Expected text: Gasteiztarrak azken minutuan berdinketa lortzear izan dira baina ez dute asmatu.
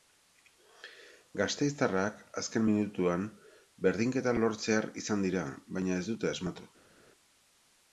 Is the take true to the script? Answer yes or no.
yes